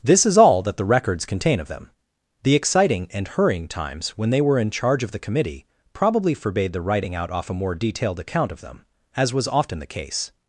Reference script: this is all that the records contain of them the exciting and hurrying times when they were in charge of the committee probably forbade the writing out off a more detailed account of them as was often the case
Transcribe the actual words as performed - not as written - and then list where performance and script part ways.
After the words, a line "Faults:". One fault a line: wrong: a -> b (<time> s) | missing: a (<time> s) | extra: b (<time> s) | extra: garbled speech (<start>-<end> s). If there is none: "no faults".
this is all that the records contain of them the exciting and hurrying times when they were in charge of the committee probably forbade the writing out off a more detailed account of them as was often the case
Faults:
no faults